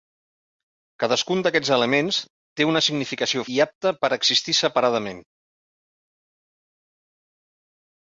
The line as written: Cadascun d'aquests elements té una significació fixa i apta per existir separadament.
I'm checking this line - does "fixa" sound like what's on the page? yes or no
no